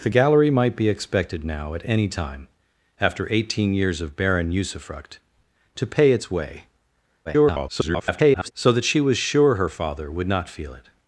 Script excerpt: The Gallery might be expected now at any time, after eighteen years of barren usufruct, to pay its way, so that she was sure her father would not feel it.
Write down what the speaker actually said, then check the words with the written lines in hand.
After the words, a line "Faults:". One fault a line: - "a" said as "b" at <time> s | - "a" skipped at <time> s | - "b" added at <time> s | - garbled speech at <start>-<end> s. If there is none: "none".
The Gallery might be expected now at any time, after eighteen years of barren usufruct, to pay its way, [garbled] so that she was sure her father would not feel it.
Faults:
- garbled speech at 7.3-8.5 s